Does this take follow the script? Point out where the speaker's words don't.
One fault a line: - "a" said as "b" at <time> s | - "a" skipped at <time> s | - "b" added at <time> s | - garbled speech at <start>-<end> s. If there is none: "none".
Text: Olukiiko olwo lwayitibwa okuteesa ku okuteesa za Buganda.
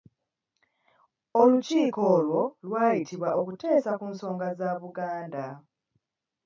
- "okuteesa" said as "nsonga" at 4.1 s